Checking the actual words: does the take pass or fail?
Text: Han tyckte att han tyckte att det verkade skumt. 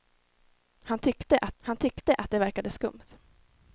pass